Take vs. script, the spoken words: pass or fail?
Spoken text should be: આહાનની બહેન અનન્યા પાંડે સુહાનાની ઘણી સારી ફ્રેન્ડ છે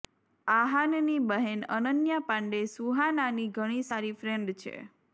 pass